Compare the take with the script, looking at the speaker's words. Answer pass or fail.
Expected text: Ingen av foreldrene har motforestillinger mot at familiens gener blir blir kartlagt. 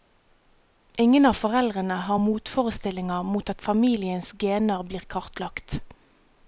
fail